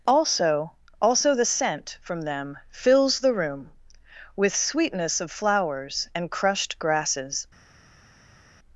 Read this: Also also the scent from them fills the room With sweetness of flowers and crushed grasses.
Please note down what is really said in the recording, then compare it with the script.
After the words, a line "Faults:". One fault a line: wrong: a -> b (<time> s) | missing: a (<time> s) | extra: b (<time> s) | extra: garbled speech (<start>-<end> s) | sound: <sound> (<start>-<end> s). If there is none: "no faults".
Also also the scent from them fills the room With sweetness of flowers and crushed grasses.
Faults:
no faults